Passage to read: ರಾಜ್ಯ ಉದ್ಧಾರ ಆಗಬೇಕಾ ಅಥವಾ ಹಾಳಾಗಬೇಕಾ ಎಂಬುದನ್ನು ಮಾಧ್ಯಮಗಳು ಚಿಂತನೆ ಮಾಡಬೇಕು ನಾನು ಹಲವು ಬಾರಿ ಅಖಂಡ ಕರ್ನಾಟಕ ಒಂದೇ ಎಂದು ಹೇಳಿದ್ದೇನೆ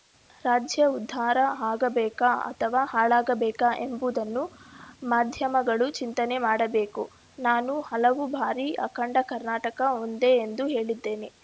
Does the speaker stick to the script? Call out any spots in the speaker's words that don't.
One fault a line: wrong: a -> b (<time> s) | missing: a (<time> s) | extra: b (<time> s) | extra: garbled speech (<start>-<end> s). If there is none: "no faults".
no faults